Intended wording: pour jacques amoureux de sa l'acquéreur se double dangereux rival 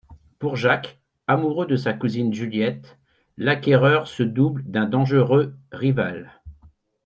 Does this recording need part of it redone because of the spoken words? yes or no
yes